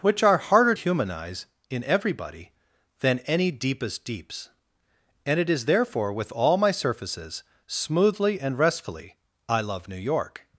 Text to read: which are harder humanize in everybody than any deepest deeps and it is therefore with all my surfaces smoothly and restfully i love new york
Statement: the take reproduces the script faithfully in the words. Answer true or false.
true